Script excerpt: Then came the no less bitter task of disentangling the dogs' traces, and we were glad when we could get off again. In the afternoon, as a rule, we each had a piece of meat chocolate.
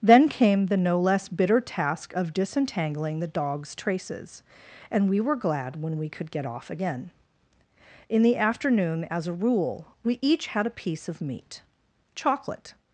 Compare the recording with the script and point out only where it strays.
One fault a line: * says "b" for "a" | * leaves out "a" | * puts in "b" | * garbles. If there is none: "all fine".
all fine